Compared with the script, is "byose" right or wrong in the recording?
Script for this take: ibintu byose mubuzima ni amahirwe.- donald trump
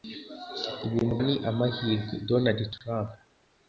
wrong